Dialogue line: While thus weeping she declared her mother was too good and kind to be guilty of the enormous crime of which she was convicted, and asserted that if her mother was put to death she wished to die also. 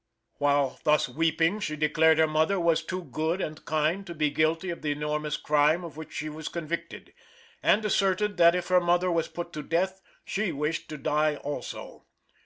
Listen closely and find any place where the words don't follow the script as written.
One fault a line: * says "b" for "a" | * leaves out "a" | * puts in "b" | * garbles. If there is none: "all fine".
all fine